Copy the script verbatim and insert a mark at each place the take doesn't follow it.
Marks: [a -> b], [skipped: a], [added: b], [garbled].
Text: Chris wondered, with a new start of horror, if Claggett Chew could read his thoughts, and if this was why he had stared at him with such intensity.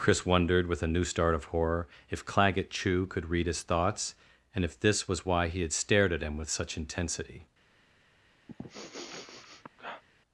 Chris wondered, with a new start of horror, if Claggett Chew could read his thoughts, and if this was why he had stared at him with such intensity.